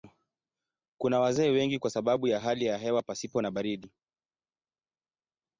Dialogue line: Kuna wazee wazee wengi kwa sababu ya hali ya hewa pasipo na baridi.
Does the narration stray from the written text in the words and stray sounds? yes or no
yes